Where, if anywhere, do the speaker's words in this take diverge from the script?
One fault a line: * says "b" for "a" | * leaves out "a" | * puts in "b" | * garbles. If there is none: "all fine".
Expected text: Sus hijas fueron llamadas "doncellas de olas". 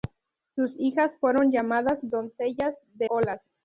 all fine